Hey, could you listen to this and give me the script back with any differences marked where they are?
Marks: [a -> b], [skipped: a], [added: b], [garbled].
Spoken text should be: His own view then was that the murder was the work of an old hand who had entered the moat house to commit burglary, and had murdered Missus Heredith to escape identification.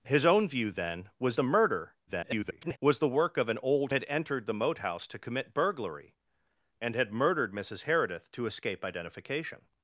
His own view then was [skipped: that] the murder [garbled] was the work of an old [skipped: hand who] had entered the moat house to commit burglary, and had murdered Missus Heredith to escape identification.